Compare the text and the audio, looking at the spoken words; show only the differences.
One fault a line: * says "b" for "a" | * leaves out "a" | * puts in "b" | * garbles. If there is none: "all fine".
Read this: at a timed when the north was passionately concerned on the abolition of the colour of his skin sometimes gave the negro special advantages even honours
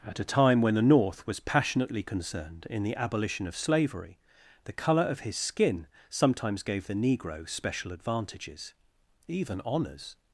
* says "time" for "timed"
* says "in" for "on"
* puts in "slavery"